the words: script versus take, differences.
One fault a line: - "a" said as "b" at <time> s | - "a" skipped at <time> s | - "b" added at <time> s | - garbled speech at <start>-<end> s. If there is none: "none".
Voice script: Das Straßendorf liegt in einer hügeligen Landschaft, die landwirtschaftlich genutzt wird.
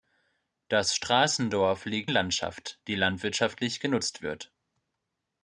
- "in einer hügeligen" skipped at 2.1 s